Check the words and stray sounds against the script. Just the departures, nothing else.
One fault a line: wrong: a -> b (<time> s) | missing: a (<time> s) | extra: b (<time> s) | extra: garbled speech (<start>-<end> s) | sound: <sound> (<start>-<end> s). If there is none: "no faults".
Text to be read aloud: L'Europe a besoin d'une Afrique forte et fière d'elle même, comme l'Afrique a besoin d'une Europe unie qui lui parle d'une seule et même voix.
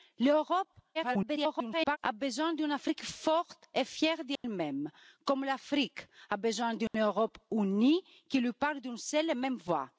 extra: garbled speech (0.9-2.0 s)
sound: dropout (4.4-4.4 s)
sound: dropout (6.9-6.9 s)